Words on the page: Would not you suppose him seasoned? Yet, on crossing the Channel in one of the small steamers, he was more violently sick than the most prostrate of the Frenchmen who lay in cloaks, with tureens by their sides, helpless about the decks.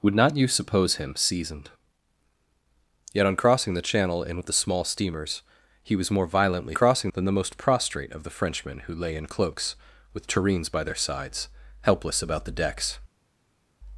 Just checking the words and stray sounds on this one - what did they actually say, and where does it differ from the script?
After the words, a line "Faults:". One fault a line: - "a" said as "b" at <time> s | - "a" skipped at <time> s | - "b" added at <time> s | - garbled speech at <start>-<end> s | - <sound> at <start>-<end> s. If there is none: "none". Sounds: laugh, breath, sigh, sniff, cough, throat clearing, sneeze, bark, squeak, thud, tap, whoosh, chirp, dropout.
Would not you suppose him seasoned? Yet, on crossing the Channel in of the small steamers, he was more violently crossing than the most prostrate of the Frenchmen who lay in cloaks, with tureens by their sides, helpless about the decks.
Faults:
- "one" skipped at 4.4 s
- "sick" said as "crossing" at 6.7 s